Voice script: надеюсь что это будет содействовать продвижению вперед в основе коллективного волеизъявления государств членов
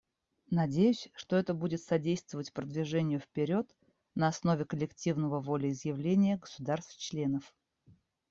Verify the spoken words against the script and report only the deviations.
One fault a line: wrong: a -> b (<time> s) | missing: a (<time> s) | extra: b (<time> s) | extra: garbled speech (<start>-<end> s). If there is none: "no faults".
wrong: в -> на (4.2 s)